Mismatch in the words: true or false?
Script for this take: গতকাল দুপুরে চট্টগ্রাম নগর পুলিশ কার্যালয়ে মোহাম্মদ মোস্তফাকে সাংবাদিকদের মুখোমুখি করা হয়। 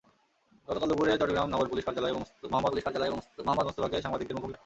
true